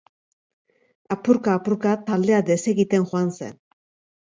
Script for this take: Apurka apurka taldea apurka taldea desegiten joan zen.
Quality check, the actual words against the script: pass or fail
fail